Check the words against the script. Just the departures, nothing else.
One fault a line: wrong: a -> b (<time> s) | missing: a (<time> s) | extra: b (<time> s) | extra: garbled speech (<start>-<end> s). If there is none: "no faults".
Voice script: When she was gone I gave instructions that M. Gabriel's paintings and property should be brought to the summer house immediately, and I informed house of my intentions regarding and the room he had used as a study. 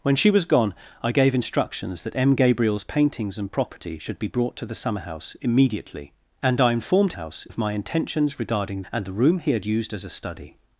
no faults